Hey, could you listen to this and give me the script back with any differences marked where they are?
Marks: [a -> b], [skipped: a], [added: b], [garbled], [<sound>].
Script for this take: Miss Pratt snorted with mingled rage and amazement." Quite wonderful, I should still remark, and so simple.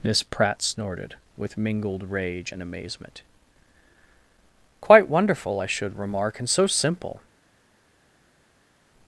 Miss Pratt snorted with mingled rage and amazement." Quite wonderful, I should [skipped: still] remark, and so simple.